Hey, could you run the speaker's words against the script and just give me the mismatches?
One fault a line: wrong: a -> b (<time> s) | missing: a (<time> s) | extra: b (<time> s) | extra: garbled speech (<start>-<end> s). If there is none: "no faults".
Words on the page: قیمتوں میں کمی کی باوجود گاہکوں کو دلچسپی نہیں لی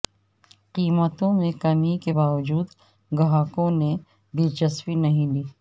wrong: کی -> کے (2.0 s)
wrong: کو -> نے (3.7 s)